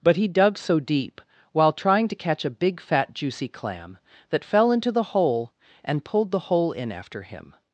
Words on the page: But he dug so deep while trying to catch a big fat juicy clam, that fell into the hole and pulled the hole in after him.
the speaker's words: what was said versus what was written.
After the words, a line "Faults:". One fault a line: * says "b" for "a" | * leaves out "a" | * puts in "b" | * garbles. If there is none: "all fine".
But he dug so deep while trying to catch a big fat juicy clam, that fell into the hole and pulled the hole in after him.
Faults:
all fine